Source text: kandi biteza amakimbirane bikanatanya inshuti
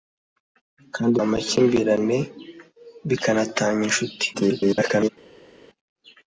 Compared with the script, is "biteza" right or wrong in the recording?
wrong